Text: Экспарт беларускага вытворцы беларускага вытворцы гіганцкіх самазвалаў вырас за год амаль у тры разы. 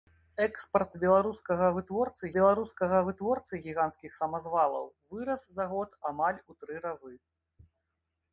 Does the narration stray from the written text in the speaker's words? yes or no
no